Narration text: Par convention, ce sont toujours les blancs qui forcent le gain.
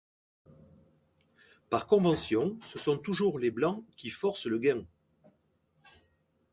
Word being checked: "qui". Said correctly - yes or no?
yes